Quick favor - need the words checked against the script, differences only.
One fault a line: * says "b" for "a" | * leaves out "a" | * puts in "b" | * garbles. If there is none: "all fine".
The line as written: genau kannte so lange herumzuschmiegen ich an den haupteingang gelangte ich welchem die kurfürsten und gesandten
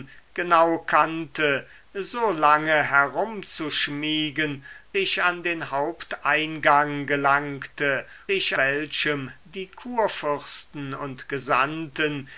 all fine